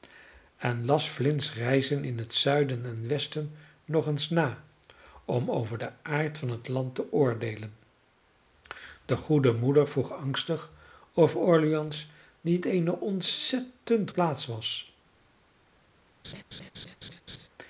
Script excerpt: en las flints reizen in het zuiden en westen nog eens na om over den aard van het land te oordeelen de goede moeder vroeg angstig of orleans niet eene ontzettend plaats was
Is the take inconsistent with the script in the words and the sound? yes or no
yes